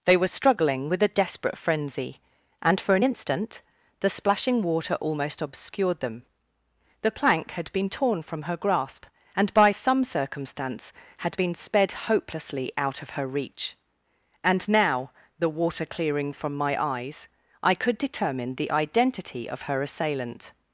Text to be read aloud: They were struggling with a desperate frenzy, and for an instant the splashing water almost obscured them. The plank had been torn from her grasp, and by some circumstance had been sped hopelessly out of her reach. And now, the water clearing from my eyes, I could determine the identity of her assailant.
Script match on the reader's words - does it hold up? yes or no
yes